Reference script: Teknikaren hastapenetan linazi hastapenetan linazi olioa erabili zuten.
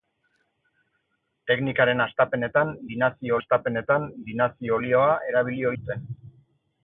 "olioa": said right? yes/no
yes